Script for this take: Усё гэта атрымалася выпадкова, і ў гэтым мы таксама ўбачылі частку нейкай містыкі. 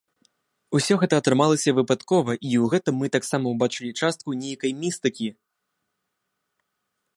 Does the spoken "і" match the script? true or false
true